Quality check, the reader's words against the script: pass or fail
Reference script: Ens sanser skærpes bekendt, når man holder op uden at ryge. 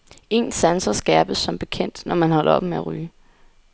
fail